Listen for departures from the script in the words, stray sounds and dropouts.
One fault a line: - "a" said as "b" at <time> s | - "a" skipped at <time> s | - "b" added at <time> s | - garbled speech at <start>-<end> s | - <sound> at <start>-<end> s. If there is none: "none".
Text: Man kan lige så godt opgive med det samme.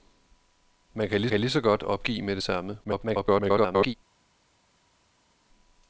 - "kan lige" added at 1.3 s
- garbled speech at 2.8-3.9 s